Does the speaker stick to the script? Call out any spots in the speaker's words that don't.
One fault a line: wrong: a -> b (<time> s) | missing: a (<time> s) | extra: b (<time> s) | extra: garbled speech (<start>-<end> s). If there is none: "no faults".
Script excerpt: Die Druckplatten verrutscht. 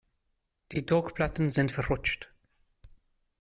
extra: sind (1.5 s)